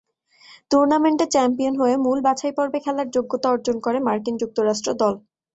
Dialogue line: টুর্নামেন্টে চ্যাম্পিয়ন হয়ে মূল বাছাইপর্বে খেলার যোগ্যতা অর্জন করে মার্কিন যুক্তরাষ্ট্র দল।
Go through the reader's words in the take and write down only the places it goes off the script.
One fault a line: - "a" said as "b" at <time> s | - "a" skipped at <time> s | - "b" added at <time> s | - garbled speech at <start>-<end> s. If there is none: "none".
none